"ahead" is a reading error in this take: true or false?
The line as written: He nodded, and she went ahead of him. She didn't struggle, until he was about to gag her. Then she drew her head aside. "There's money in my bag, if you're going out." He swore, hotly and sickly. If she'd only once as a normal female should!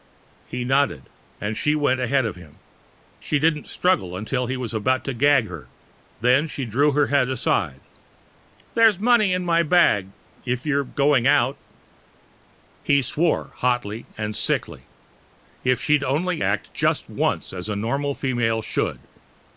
false